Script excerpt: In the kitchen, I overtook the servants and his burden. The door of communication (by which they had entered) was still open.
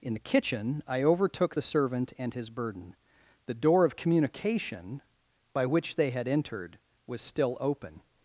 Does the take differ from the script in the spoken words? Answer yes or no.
yes